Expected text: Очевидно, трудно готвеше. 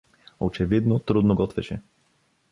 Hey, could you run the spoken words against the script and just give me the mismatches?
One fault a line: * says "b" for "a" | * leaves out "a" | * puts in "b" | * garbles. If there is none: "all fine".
all fine